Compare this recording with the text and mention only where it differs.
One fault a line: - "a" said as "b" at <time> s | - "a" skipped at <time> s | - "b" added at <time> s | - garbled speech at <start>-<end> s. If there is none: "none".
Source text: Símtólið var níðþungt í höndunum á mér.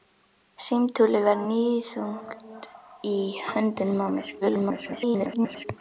- garbled speech at 4.4-5.7 s